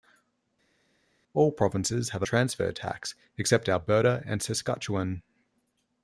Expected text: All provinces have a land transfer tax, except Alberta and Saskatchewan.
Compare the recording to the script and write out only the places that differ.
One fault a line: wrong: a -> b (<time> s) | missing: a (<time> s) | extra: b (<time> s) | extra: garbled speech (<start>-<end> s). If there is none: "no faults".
missing: land (2.3 s)